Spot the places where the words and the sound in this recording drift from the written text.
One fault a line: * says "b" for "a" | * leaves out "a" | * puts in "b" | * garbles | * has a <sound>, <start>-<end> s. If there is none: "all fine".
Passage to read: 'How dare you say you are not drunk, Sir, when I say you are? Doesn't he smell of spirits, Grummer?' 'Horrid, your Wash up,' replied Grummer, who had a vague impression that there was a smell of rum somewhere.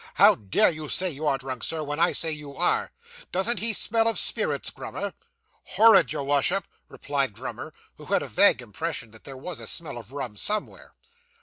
* leaves out "not"